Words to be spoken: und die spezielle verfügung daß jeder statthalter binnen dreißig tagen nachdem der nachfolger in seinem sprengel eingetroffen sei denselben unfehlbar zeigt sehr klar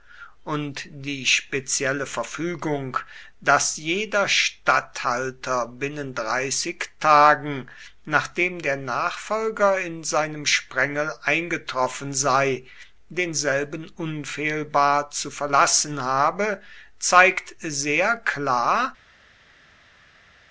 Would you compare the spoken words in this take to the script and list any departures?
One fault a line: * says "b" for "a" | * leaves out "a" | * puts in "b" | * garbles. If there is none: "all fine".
* puts in "zu verlassen habe"